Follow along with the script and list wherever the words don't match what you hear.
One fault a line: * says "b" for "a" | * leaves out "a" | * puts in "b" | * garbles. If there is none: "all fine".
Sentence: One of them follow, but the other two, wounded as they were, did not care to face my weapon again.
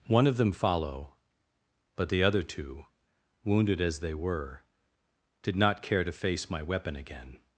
all fine